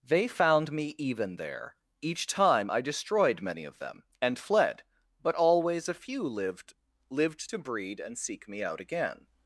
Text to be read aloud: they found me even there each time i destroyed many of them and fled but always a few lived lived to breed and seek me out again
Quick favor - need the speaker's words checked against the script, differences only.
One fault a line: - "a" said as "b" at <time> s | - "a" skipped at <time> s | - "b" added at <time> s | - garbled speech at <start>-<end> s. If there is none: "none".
none